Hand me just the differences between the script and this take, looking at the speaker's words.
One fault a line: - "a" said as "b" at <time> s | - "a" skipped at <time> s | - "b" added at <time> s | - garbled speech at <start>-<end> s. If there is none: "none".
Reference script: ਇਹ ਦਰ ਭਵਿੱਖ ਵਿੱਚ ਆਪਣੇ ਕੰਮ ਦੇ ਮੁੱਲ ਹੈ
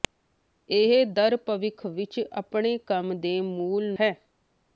none